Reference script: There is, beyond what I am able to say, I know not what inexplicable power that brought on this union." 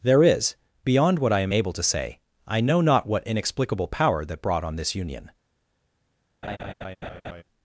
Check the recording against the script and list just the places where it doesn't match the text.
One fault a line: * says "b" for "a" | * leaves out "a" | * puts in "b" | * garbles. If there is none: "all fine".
all fine